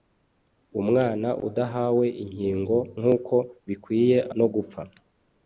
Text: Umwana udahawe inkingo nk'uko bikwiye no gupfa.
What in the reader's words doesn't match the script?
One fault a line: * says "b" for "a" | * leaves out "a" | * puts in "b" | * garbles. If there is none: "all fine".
all fine